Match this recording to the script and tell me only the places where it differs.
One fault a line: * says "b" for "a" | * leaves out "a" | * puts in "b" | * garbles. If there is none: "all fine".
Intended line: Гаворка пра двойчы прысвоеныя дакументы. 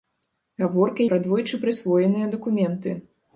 all fine